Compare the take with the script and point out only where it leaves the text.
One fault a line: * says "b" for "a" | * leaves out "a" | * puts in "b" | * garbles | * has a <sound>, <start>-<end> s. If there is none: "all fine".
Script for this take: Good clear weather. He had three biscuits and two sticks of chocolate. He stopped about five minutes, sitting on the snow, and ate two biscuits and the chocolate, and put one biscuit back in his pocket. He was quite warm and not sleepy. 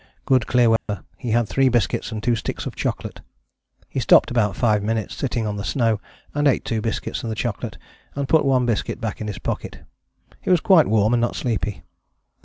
* has a dropout, 0.8-0.9 s